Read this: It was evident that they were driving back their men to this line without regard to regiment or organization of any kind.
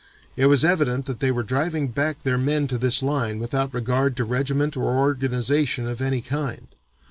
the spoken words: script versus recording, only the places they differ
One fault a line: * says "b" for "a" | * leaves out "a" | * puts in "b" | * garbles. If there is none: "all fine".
all fine